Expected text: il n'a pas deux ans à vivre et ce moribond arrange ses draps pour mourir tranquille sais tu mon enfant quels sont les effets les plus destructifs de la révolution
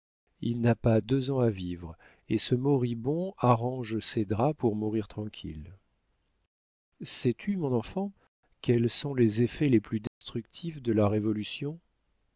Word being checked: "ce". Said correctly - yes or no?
yes